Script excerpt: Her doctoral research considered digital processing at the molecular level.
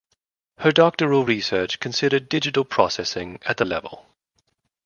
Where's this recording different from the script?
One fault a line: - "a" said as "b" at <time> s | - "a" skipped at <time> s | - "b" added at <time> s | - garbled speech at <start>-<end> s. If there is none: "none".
- "molecular" skipped at 3.6 s